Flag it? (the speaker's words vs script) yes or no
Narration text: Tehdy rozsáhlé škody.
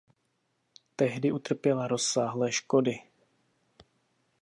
yes